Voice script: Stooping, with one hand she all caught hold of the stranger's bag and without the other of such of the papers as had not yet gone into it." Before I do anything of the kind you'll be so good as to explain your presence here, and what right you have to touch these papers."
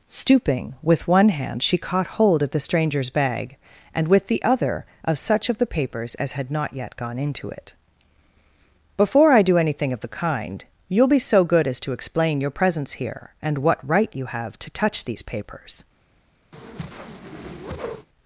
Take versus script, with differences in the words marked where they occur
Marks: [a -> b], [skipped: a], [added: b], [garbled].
Stooping, with one hand she [skipped: all] caught hold of the stranger's bag and [without -> with] the other of such of the papers as had not yet gone into it." Before I do anything of the kind you'll be so good as to explain your presence here, and what right you have to touch these papers."